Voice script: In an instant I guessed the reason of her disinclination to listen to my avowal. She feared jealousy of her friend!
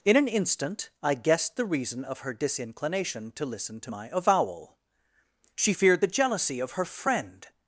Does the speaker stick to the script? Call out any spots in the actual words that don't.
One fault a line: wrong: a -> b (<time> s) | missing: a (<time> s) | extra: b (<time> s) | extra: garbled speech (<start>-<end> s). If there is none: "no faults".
extra: the (6.0 s)